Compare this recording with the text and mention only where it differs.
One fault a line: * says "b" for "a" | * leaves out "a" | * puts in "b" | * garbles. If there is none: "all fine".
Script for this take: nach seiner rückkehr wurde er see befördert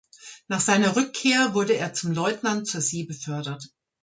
* puts in "zum leutnant zur"